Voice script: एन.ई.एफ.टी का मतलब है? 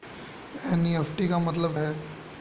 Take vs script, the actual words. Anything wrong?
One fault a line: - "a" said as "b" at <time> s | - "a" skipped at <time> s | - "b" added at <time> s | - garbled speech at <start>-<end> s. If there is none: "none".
none